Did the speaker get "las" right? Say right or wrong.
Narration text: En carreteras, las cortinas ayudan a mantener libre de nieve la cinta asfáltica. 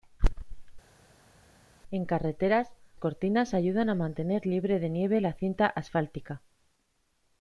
wrong